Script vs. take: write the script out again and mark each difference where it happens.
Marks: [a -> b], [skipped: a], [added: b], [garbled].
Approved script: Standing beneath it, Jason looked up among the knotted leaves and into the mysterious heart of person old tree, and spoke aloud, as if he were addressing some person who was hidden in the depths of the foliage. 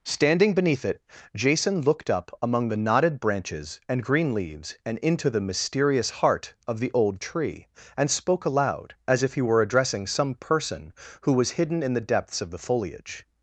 Standing beneath it, Jason looked up among the knotted [added: branches and green] leaves and into the mysterious heart of [person -> the] old tree, and spoke aloud, as if he were addressing some person who was hidden in the depths of the foliage.